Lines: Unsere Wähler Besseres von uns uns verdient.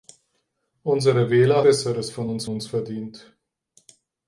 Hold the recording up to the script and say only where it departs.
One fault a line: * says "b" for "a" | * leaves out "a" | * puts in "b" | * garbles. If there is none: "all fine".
all fine